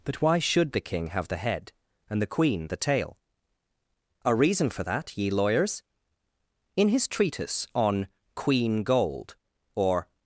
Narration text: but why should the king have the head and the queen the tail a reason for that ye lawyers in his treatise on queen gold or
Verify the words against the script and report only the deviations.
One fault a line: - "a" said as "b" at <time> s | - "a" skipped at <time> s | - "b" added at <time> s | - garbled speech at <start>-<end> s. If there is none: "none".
none